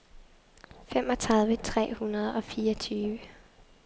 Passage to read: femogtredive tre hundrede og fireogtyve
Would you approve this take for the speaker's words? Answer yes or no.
yes